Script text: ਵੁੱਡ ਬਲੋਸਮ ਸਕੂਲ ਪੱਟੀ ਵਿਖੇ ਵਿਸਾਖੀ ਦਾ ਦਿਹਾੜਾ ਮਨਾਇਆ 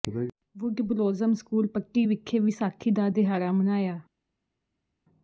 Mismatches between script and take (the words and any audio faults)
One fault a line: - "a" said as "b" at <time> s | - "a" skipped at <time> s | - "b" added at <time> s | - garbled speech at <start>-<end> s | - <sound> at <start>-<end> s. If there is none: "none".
none